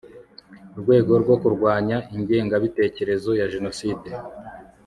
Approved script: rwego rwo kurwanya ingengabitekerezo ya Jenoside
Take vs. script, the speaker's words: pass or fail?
pass